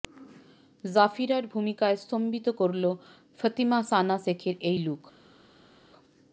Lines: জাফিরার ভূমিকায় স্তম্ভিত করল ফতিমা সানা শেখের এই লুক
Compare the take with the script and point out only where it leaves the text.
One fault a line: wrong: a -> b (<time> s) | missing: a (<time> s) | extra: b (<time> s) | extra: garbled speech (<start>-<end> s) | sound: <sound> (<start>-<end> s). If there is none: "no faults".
no faults